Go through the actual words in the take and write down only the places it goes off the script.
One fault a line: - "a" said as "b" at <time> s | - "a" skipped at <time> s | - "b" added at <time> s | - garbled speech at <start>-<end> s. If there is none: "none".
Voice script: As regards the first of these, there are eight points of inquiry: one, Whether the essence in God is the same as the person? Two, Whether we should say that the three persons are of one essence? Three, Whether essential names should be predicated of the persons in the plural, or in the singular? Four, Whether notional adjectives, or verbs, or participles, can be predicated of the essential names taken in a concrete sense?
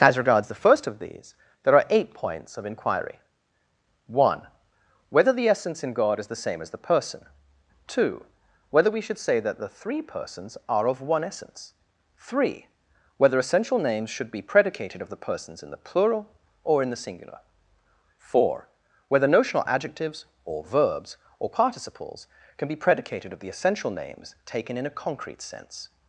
none